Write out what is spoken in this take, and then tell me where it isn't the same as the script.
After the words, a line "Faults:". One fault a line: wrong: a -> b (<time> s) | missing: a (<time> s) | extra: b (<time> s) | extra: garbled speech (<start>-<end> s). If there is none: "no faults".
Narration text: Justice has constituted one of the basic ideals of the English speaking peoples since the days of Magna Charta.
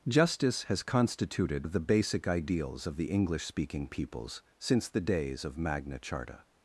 Justice has constituted of the basic ideals of the English speaking peoples since the days of Magna Charta.
Faults:
missing: one (1.7 s)